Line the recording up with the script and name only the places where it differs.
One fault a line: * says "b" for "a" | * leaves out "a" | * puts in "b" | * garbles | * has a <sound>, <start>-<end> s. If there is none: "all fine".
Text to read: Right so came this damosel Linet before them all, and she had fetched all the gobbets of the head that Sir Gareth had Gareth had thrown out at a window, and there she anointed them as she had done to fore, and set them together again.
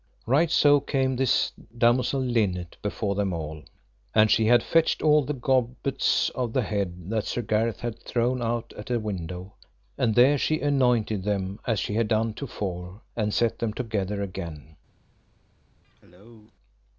* leaves out "Gareth had"
* has a cough, 15.8-16.5 s